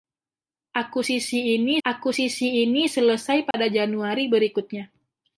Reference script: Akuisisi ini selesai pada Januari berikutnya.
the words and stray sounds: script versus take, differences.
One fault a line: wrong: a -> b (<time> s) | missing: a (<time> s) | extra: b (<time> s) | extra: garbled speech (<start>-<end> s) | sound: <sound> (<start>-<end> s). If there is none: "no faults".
extra: akuisisi ini (1.8 s)
sound: dropout (3.5-3.5 s)